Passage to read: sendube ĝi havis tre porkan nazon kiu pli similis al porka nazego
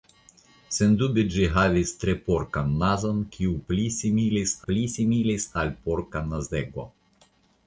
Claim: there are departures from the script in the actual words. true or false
true